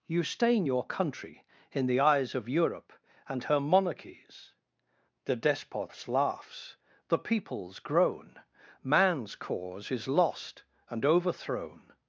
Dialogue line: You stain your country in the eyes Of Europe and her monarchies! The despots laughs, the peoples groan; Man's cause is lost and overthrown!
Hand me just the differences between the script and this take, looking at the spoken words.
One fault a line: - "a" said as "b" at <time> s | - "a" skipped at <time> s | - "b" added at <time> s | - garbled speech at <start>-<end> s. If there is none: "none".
none